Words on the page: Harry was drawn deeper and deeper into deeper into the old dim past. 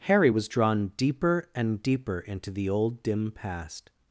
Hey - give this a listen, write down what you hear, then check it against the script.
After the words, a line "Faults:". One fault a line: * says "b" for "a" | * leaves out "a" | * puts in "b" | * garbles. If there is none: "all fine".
Harry was drawn deeper and deeper into the old dim past.
Faults:
* leaves out "deeper into"